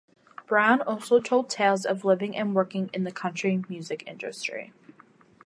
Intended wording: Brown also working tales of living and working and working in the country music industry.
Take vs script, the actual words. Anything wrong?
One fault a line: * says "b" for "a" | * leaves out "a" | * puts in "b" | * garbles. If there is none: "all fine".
* says "told" for "working"
* leaves out "and working"